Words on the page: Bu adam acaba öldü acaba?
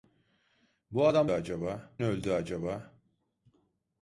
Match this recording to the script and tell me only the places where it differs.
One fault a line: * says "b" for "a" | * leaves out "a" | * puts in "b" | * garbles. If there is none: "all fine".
all fine